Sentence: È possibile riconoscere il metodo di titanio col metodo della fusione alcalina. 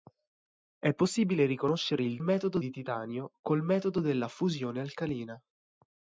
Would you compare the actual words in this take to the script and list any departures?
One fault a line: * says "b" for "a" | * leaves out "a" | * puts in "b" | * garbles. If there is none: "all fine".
all fine